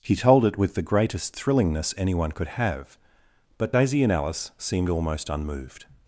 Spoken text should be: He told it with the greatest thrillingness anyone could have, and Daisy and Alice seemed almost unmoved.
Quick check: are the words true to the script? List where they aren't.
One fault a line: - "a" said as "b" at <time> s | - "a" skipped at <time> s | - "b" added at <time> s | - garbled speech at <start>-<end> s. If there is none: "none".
- "and" said as "but" at 3.6 s